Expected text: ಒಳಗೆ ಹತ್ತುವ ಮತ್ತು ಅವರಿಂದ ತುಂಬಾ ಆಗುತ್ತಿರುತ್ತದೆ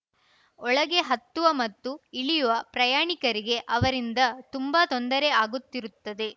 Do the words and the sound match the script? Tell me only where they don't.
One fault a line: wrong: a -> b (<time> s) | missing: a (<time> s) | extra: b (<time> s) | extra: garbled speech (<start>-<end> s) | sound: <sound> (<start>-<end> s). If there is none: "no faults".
extra: ಇಳಿಯುವ ಪ್ರಯಾಣಿಕರಿಗೆ (2.1 s)
extra: ತೊಂದರೆ (4.9 s)